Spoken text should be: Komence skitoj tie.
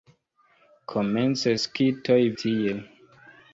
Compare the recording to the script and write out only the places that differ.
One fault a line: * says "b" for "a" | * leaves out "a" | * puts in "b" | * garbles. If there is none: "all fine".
all fine